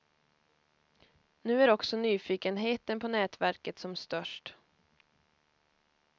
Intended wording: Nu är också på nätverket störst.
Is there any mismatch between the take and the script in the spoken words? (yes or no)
yes